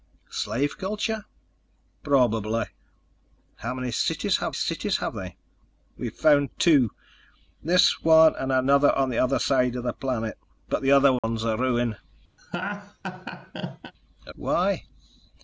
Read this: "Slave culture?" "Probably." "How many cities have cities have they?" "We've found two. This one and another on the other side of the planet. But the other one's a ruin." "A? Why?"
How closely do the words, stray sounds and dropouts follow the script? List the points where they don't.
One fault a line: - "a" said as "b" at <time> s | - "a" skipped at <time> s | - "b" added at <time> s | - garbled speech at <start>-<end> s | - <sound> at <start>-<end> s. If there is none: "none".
- dropout at 11.2-11.2 s
- laugh at 12.4-13.9 s